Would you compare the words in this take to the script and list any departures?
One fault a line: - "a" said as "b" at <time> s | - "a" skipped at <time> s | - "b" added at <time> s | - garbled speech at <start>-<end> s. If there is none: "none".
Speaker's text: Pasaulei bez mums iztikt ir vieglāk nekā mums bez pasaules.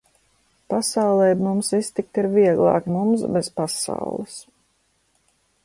- "bez" skipped at 1.4 s
- "nekā" skipped at 2.9 s